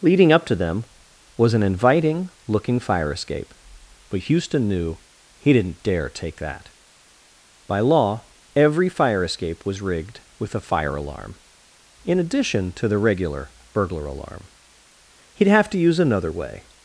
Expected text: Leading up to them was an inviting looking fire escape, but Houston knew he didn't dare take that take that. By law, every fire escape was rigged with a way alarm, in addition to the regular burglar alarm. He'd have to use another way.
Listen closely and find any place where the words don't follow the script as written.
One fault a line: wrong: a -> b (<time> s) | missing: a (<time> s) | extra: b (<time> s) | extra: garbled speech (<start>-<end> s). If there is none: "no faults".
missing: take that (6.7 s)
wrong: way -> fire (10.6 s)